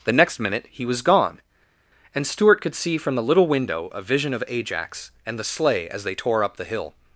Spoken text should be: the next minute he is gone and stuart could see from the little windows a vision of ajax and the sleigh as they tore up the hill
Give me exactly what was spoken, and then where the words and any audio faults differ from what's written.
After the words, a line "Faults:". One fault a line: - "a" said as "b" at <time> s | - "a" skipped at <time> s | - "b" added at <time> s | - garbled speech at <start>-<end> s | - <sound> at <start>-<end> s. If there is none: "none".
the next minute he was gone and stuart could see from the little window a vision of ajax and the sleigh as they tore up the hill
Faults:
- "is" said as "was" at 0.8 s
- "windows" said as "window" at 3.5 s